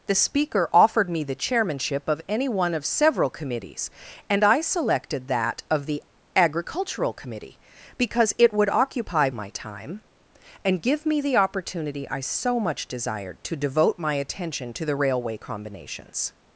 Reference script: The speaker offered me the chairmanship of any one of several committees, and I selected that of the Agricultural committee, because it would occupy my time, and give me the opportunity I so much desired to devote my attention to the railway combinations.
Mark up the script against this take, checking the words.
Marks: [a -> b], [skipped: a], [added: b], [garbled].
The speaker offered me the chairmanship of any one of several committees, and I selected that of the Agricultural committee, because it would occupy my time, and give me the opportunity I so much desired to devote my attention to the railway combinations.